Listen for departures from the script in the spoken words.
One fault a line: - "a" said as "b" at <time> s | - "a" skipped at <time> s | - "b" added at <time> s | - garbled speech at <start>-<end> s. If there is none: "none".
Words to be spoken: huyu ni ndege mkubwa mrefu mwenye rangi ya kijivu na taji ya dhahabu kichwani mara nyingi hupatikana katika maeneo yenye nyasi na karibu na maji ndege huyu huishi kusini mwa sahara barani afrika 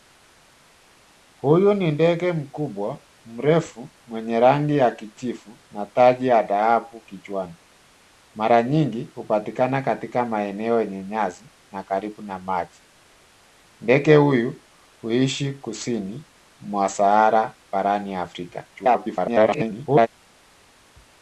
- garbled speech at 18.7-20.1 s